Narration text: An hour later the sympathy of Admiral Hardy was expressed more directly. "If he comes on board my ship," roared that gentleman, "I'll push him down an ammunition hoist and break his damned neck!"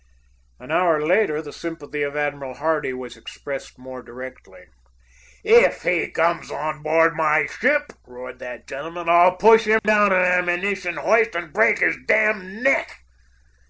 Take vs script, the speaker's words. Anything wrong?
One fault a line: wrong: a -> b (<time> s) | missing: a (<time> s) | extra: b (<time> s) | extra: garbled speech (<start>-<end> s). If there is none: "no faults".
no faults